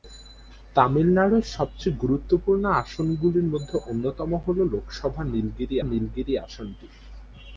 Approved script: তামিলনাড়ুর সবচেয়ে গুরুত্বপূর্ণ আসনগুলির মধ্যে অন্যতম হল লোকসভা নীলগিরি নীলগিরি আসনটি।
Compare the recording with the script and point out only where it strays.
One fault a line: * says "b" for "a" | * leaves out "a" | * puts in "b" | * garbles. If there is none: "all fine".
all fine